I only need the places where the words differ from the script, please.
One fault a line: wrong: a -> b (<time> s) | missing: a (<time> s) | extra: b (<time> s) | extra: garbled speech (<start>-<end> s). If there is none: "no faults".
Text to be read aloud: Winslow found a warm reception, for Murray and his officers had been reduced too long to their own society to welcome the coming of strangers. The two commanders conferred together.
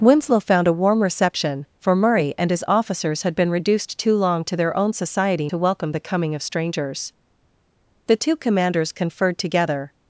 no faults